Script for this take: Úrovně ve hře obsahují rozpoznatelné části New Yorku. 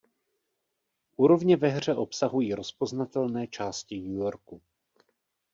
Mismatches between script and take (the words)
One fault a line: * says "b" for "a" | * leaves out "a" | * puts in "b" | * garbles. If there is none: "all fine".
all fine